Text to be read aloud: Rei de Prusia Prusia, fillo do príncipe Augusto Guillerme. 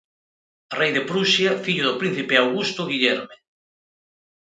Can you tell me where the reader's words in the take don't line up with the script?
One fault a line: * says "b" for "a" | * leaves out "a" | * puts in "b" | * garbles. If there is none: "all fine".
* leaves out "Prusia"